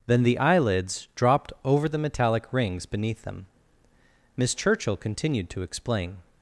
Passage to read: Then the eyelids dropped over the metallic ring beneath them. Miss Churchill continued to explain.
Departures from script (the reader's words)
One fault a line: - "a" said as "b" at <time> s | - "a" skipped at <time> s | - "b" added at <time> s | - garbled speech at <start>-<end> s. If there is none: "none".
- "ring" said as "rings" at 2.5 s